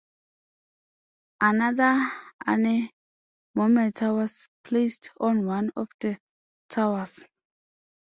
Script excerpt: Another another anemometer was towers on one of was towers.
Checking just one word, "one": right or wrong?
right